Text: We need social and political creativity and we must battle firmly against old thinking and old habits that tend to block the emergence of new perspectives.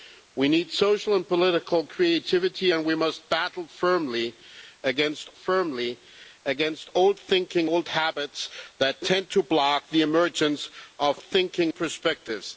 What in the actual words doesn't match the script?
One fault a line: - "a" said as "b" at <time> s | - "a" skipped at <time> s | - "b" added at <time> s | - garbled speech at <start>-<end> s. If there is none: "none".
- "firmly against" added at 5.3 s
- "and" skipped at 7.7 s
- "new" said as "thinking" at 11.2 s